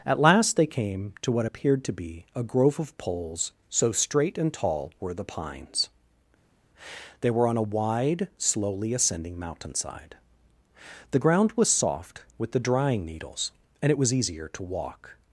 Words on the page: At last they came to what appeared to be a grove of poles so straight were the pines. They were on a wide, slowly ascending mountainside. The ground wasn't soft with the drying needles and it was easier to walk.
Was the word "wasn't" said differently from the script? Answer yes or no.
yes